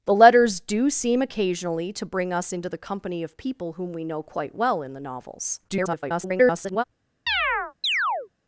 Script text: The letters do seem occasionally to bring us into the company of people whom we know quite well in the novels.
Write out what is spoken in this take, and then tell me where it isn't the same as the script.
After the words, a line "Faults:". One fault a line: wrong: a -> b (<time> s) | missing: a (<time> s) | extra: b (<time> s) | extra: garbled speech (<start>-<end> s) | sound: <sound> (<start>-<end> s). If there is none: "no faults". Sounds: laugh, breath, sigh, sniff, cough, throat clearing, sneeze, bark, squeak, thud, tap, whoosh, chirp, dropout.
The letters do seem occasionally to bring us into the company of people whom we know quite well in the novels. [garbled]
Faults:
extra: garbled speech (5.7-6.8 s)
sound: chirp (7.3-8.3 s)